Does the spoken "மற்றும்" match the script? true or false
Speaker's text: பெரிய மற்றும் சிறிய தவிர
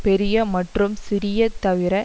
true